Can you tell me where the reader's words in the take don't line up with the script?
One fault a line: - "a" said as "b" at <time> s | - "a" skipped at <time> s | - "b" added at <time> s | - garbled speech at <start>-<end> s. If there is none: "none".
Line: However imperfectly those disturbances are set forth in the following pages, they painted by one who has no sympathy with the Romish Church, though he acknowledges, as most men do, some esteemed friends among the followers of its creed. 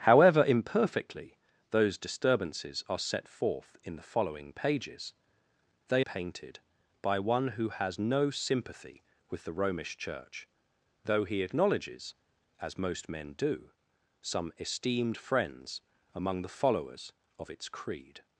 none